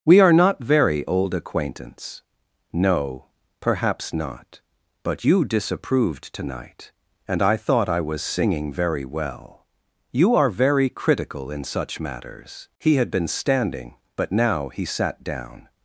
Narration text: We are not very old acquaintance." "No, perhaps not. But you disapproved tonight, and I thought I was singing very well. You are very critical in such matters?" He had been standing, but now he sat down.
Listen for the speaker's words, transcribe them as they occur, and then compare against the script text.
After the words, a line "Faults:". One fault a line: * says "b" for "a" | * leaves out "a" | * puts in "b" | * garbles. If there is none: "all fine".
We are not very old acquaintance." "No, perhaps not. But you disapproved tonight, and I thought I was singing very well. You are very critical in such matters?" He had been standing, but now he sat down.
Faults:
all fine